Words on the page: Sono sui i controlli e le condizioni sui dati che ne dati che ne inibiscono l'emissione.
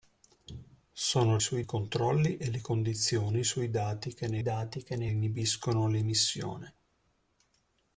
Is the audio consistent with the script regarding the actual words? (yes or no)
yes